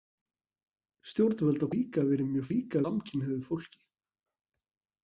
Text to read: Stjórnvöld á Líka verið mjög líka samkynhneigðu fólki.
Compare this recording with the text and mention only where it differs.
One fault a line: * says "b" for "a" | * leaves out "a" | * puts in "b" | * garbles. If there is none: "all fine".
all fine